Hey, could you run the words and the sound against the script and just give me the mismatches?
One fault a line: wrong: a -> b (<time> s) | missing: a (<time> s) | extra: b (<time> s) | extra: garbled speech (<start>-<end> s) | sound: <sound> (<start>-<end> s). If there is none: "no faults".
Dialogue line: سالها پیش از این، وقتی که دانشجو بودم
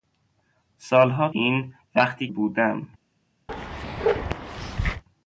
missing: پیش از (1.3 s)
missing: که دانشجو (2.3 s)
sound: bark (3.5-5.0 s)